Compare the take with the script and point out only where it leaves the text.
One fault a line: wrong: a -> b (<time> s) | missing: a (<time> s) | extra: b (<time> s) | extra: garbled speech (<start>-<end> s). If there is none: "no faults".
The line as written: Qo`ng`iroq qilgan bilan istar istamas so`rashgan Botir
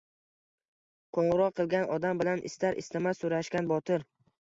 extra: odam (2.0 s)